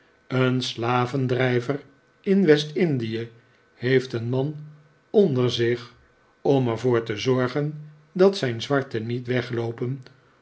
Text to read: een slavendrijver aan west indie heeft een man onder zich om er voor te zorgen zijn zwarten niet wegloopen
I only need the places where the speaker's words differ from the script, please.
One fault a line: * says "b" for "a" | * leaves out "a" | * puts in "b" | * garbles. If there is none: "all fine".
* says "in" for "aan"
* puts in "dat"